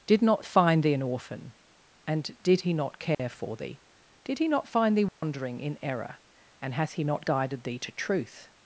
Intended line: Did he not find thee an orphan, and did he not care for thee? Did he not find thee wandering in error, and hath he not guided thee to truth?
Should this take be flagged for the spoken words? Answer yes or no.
yes